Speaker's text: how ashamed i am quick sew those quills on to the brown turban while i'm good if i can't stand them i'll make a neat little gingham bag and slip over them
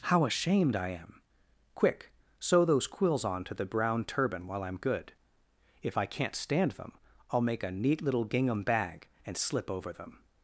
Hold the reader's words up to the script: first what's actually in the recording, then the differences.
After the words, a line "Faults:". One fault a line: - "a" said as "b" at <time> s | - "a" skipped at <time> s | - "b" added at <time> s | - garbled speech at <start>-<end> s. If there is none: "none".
how ashamed i am quick sew those quills on to the brown turban while i'm good if i can't stand them i'll make a neat little gingham bag and slip over them
Faults:
none